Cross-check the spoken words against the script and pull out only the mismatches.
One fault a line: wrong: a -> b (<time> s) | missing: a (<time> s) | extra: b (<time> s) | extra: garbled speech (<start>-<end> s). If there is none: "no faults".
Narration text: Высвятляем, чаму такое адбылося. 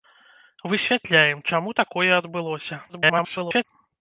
extra: garbled speech (2.9-3.6 s)